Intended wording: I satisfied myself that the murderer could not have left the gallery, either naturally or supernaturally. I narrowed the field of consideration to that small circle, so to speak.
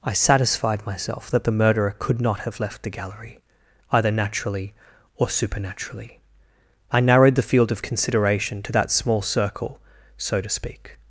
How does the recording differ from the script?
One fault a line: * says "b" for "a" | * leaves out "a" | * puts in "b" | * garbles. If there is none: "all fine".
all fine